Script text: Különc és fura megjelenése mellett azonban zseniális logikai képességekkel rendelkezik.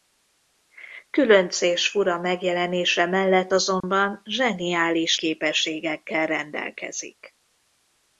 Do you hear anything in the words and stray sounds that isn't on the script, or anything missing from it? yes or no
yes